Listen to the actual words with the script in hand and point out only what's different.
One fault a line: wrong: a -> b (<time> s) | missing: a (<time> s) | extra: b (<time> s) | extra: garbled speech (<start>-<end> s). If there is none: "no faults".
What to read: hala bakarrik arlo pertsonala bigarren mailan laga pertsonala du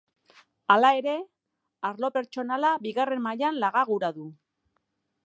wrong: bakarrik -> ere (1.0 s)
wrong: pertsonala -> gura (3.9 s)